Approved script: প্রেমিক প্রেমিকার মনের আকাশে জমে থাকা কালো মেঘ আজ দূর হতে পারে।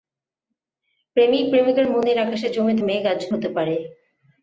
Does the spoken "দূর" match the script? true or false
false